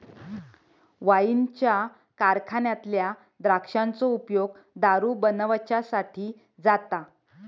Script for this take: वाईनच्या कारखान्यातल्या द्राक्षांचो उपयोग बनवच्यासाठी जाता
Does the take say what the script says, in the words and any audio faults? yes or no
no